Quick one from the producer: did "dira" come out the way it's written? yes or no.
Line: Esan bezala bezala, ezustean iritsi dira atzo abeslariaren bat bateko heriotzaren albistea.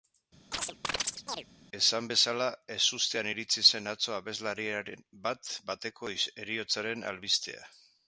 no